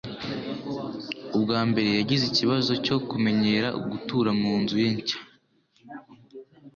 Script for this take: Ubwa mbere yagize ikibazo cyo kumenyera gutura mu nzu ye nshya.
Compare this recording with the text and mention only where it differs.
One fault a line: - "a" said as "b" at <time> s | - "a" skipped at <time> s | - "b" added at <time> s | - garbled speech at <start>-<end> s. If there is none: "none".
none